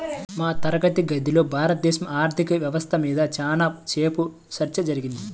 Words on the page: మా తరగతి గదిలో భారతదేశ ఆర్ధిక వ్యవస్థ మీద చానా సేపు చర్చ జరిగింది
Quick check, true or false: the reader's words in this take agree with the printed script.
true